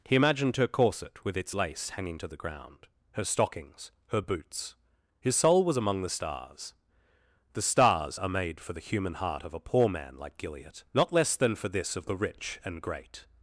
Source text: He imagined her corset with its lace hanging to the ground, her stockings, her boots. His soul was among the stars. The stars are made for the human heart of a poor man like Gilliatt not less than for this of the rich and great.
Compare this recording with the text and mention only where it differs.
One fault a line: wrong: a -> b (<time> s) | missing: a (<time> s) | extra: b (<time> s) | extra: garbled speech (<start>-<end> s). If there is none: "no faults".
no faults